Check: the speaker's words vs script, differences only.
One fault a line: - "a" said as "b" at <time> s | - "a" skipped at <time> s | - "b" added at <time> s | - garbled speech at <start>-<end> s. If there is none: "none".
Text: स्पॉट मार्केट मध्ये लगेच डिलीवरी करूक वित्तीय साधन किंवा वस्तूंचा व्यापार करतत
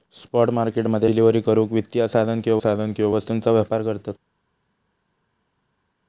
- "लगेच" skipped at 1.1 s
- "साधन किंवा" added at 2.6 s